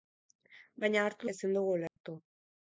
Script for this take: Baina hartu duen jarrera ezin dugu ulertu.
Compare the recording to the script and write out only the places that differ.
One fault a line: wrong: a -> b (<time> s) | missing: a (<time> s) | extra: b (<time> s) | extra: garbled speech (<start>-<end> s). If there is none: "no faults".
missing: duen jarrera (1.3 s)